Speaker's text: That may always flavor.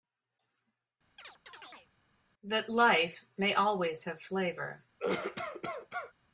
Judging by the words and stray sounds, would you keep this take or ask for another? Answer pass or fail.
fail